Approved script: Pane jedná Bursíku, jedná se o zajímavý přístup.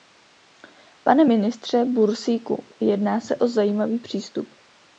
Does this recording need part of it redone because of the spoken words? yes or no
yes